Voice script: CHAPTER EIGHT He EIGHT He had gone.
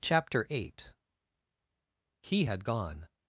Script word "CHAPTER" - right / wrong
right